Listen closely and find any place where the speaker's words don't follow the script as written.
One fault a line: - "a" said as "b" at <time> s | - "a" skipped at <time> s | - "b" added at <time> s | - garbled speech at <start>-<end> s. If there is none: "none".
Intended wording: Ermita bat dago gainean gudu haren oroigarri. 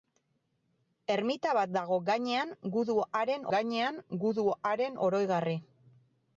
- "gainean gudu haren" added at 3.5 s